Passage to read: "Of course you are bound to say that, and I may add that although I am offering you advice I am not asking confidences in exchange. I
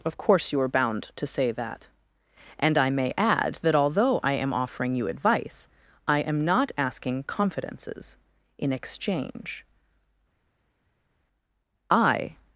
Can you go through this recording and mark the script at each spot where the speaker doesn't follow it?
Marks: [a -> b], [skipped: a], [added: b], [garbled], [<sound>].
"Of course you are bound to say that, and I may add that although I am offering you advice I am not asking confidences in exchange. I